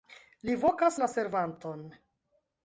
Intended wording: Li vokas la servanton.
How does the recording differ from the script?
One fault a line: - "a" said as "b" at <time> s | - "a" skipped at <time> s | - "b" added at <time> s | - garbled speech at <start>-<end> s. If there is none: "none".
none